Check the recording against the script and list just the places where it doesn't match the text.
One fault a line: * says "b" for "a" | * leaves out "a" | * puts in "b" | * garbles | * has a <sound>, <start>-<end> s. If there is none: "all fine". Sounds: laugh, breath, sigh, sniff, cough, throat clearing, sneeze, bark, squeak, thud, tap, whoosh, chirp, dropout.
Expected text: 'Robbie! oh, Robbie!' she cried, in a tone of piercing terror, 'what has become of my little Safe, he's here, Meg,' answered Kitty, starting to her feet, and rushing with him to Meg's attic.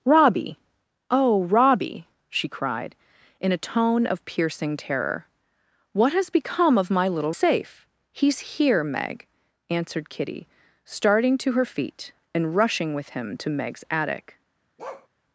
* has a bark, 14.8-15.1 s